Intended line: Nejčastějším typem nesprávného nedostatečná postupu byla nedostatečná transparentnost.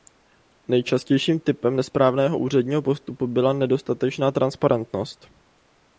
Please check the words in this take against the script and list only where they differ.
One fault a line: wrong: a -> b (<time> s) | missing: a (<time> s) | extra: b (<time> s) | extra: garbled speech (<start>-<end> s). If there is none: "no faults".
wrong: nedostatečná -> úředního (2.4 s)